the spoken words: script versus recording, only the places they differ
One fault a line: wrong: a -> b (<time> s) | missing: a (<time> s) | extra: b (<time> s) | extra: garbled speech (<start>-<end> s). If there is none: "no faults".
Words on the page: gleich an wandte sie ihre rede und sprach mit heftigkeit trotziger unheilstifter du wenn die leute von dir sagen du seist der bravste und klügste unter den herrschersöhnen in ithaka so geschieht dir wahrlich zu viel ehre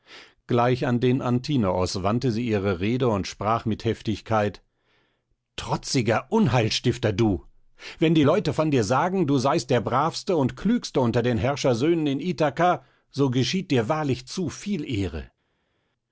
extra: den antinoos (1.0 s)